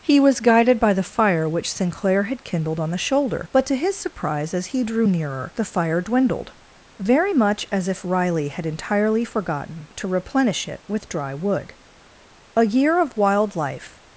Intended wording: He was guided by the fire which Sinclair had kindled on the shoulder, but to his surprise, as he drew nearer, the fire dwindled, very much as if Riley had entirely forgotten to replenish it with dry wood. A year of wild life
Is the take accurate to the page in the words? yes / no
yes